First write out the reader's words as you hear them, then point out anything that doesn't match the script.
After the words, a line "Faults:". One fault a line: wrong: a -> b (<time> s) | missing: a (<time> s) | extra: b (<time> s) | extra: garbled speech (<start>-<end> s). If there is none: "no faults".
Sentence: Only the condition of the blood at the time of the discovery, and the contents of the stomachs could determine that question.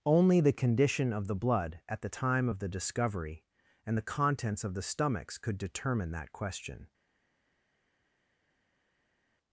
Only the condition of the blood at the time of the discovery, and the contents of the stomachs could determine that question.
Faults:
no faults